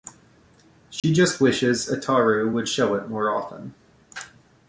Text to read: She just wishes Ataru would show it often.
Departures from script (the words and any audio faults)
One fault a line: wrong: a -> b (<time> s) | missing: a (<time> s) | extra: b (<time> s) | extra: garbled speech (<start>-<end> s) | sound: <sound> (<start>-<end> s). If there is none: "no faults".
sound: dropout (1.0-1.0 s)
extra: more (3.1 s)